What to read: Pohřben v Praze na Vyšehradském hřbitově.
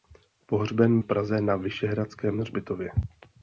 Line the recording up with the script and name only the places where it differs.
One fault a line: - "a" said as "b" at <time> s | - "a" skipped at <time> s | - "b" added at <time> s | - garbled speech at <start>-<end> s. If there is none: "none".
none